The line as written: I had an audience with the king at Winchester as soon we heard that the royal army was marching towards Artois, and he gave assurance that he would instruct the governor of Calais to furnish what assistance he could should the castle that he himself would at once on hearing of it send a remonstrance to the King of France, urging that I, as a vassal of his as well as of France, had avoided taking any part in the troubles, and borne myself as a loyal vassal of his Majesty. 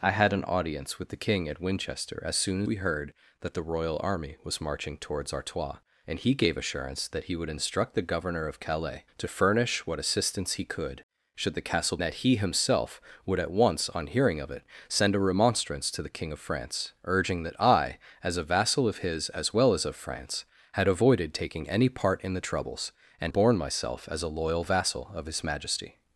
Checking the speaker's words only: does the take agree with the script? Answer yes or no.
yes